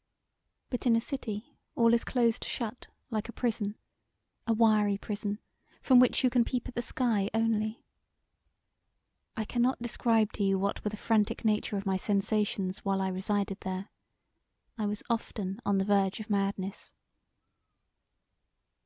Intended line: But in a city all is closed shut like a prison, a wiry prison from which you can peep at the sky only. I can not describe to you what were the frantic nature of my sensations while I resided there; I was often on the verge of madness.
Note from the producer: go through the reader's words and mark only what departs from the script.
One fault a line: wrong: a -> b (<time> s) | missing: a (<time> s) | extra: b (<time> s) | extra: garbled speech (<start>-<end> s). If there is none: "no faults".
no faults